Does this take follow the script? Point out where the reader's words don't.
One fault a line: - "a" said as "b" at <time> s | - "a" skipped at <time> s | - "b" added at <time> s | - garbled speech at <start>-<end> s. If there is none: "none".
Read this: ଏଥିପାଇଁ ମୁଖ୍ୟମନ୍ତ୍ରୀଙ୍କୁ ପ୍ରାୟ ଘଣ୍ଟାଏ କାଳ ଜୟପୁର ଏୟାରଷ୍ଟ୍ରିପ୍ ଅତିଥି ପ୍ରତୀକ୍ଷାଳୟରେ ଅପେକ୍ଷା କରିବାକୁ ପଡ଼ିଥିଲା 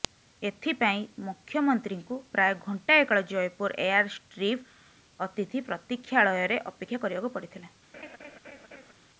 none